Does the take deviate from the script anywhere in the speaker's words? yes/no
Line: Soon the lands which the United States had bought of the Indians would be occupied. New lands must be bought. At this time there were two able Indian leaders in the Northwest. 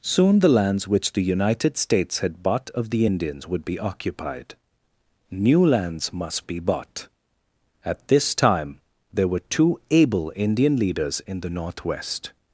no